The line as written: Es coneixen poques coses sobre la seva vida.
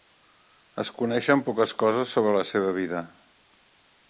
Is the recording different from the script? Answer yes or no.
no